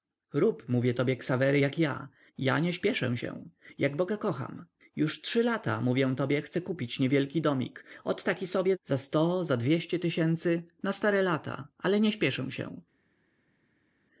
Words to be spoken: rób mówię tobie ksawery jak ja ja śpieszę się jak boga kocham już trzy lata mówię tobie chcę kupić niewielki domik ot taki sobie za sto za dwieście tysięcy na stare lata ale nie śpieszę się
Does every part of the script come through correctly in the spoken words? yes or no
no